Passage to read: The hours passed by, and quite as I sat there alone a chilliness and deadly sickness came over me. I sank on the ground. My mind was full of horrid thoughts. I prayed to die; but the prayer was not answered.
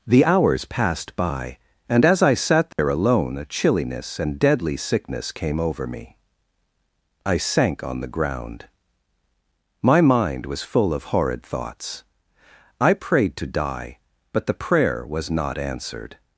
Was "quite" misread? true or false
true